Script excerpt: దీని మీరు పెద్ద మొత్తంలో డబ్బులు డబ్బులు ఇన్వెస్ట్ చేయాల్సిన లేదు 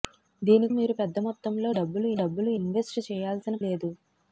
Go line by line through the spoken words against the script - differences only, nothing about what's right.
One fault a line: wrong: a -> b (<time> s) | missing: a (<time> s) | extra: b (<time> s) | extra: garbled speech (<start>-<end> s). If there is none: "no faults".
no faults